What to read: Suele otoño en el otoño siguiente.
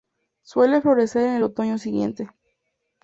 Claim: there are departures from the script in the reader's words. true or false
true